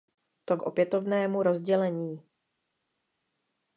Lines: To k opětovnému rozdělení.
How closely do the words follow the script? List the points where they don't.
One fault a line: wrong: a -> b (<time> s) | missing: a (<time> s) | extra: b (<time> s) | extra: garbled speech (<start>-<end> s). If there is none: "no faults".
no faults